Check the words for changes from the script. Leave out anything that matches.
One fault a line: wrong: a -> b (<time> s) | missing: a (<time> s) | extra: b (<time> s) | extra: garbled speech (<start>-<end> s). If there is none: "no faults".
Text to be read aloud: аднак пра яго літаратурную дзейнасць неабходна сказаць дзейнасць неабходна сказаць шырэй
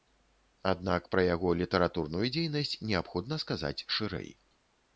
missing: дзейнасць неабходна сказаць (3.8 s)